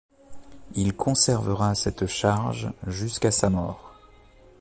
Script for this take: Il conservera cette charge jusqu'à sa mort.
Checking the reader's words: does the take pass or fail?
pass